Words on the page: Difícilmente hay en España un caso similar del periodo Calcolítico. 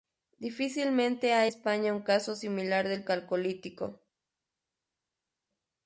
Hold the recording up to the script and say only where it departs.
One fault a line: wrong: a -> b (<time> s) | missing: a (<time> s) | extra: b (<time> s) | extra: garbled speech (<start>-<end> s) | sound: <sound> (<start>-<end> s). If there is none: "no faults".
missing: en (1.5 s)
missing: periodo (3.0 s)